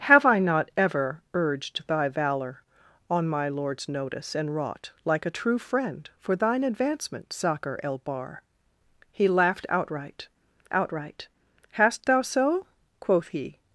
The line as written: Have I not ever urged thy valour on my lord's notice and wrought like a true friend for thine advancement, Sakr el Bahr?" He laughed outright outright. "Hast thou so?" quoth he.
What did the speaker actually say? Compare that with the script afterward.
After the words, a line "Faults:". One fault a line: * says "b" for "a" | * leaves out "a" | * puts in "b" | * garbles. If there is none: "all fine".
Have I not ever urged thy valour on my lord's notice and wrought like a true friend for thine advancement, Sakr el Bahr?" He laughed outright outright. "Hast thou so?" quoth he.
Faults:
all fine